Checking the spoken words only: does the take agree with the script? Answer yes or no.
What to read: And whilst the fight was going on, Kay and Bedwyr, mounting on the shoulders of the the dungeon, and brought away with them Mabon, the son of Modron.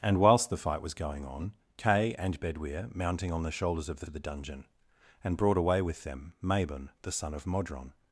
yes